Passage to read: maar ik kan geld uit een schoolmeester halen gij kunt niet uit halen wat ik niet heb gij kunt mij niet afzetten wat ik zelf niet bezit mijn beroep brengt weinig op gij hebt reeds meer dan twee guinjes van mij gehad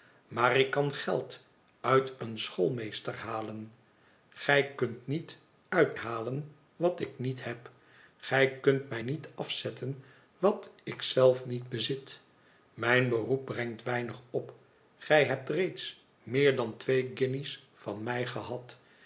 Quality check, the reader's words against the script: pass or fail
pass